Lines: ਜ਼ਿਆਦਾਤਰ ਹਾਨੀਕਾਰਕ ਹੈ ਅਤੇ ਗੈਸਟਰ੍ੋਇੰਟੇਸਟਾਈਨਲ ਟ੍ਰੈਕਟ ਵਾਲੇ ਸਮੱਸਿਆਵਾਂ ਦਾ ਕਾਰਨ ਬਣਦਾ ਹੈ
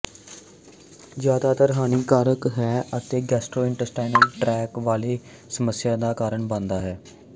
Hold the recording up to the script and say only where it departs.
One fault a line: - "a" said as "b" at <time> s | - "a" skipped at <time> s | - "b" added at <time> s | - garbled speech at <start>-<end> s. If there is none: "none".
none